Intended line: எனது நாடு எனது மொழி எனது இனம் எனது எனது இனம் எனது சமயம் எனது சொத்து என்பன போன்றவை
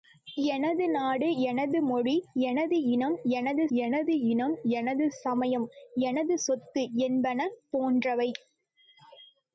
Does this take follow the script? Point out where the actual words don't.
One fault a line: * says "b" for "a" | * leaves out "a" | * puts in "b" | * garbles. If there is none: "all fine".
all fine